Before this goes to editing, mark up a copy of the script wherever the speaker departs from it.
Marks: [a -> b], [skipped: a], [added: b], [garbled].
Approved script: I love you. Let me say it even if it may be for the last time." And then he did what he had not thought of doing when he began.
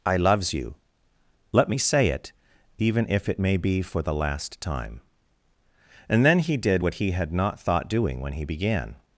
I [love -> loves] you. Let me say it even if it may be for the last time." And then he did what he had not thought [skipped: of] doing when he began.